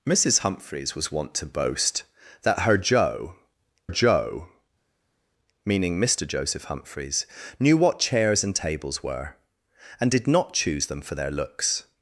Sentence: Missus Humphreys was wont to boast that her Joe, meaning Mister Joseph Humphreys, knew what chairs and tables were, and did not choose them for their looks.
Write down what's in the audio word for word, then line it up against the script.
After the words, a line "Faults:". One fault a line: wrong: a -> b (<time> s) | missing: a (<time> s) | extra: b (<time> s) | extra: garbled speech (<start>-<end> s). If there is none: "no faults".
Missus Humphreys was wont to boast that her Joe Joe, meaning Mister Joseph Humphreys, knew what chairs and tables were, and did not choose them for their looks.
Faults:
extra: Joe (3.9 s)